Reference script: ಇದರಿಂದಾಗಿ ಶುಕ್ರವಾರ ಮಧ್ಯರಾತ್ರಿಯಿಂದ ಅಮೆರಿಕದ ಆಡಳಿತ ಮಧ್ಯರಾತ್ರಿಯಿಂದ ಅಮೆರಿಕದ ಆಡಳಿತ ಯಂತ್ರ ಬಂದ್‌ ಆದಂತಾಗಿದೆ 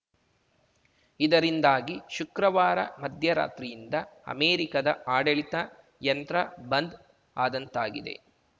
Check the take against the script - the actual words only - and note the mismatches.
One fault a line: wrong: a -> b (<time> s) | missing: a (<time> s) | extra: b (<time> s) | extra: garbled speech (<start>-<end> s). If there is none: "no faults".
missing: ಮಧ್ಯರಾತ್ರಿಯಿಂದ ಅಮೆರಿಕದ ಆಡಳಿತ (5.5 s)